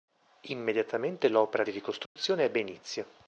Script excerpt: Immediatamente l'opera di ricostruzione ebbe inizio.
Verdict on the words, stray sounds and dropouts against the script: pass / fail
fail